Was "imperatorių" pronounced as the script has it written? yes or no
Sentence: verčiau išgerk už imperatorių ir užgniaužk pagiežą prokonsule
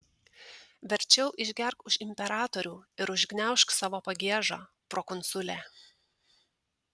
yes